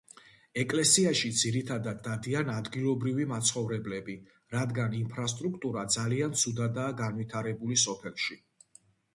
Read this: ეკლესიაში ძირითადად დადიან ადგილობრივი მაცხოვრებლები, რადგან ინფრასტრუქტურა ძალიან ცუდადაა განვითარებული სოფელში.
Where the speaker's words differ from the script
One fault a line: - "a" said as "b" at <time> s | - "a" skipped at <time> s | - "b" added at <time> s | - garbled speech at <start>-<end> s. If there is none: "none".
none